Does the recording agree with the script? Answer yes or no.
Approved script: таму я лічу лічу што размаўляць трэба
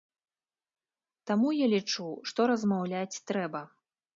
no